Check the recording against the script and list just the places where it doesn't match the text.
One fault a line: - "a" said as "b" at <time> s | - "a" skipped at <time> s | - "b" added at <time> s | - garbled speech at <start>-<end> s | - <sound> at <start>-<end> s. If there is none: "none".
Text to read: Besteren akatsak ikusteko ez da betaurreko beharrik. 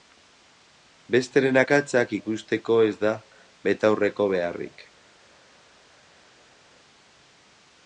none